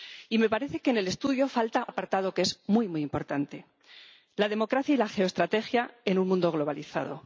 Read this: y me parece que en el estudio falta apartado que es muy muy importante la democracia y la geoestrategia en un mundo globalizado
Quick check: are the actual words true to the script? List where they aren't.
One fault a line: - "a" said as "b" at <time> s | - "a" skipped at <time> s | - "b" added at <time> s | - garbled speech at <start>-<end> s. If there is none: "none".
none